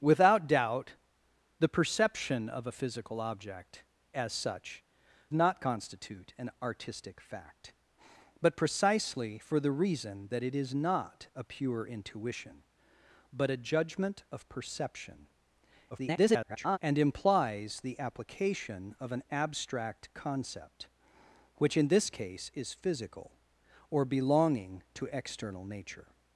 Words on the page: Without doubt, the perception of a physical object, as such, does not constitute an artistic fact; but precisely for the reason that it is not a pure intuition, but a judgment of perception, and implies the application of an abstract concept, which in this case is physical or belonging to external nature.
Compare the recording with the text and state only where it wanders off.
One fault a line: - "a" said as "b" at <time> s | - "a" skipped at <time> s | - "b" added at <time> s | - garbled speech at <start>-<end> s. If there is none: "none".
- "does" skipped at 4.8 s
- garbled speech at 15.9-16.8 s